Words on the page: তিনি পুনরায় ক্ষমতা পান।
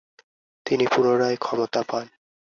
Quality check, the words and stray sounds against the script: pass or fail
pass